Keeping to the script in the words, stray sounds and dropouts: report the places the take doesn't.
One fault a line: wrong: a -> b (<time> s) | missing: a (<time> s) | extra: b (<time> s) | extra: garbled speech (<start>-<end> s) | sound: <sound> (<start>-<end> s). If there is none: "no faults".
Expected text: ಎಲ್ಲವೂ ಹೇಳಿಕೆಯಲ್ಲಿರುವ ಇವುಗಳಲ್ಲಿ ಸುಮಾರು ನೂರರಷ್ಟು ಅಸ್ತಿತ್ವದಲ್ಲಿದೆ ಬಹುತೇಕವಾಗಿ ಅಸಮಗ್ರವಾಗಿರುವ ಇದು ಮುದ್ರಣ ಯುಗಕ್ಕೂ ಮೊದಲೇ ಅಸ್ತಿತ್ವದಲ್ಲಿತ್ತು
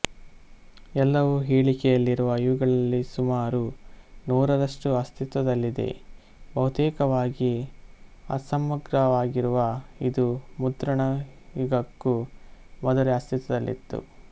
no faults